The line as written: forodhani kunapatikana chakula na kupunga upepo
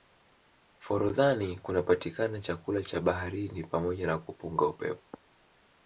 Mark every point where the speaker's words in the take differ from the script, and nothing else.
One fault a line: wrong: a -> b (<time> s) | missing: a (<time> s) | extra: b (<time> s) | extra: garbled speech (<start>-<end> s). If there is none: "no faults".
extra: cha baharini pamoja (2.8 s)